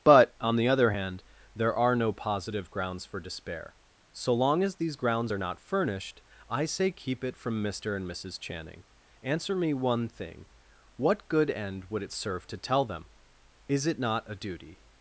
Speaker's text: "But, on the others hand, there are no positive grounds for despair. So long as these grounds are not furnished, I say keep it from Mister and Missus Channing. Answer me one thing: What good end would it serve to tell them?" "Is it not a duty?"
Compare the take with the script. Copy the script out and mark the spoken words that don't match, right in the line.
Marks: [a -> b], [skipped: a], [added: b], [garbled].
"But, on the [others -> other] hand, there are no positive grounds for despair. So long as these grounds are not furnished, I say keep it from Mister and Missus Channing. Answer me one thing: What good end would it serve to tell them?" "Is it not a duty?"